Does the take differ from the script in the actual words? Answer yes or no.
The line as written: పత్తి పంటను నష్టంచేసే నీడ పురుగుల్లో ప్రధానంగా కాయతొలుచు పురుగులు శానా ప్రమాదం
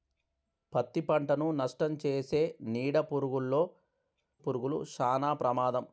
yes